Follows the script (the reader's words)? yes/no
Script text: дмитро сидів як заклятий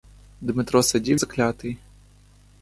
no